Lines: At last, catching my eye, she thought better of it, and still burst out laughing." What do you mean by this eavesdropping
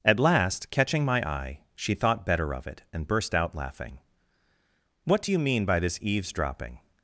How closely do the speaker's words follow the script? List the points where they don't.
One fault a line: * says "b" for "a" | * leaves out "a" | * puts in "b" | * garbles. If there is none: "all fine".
* leaves out "still"